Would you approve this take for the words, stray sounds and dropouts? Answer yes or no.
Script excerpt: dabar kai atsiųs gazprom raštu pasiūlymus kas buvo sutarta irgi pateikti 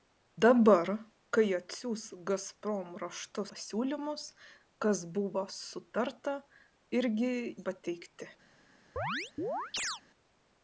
no